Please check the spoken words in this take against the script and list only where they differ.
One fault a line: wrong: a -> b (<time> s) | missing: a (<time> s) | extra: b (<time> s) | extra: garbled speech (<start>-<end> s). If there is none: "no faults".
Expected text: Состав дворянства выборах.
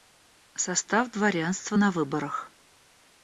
extra: на (1.7 s)